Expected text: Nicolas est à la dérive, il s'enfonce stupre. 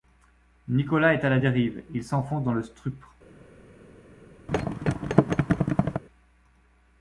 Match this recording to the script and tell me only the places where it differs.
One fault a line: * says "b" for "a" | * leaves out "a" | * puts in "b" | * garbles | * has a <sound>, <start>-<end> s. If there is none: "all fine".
* puts in "dans le"
* has a thud, 4.5-6.0 s